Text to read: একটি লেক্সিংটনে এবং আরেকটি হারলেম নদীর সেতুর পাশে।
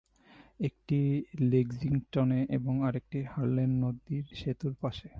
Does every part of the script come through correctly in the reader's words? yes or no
yes